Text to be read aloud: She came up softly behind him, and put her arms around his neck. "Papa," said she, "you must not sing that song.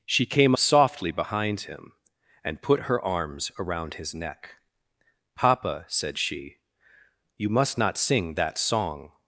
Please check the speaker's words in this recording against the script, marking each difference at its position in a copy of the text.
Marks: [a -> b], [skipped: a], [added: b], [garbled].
She came [skipped: up] softly behind him, and put her arms around his neck. "Papa," said she, "you must not sing that song.